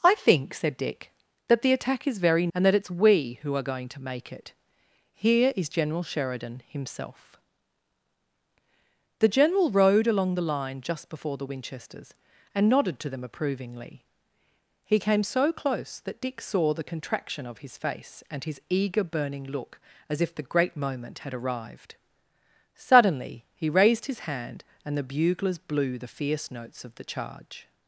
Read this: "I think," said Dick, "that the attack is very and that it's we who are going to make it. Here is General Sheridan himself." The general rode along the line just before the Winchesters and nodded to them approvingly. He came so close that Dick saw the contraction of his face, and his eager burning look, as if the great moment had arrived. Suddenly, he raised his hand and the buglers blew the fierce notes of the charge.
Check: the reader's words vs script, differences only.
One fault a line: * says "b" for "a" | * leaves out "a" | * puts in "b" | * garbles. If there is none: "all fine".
all fine